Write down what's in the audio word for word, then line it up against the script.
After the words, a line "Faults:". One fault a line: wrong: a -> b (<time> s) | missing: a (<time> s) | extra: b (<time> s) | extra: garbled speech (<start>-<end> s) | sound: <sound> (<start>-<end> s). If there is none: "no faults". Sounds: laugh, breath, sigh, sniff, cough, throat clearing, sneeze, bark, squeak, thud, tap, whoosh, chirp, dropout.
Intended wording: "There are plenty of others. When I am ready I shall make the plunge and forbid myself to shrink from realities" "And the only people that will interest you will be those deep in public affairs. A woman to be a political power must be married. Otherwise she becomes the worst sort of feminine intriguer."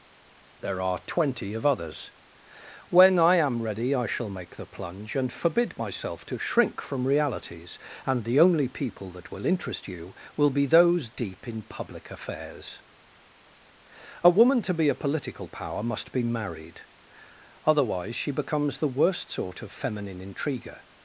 "There are twenty of others. When I am ready I shall make the plunge and forbid myself to shrink from realities" "And the only people that will interest you will be those deep in public affairs. A woman to be a political power must be married. Otherwise she becomes the worst sort of feminine intriguer."
Faults:
wrong: plenty -> twenty (1.1 s)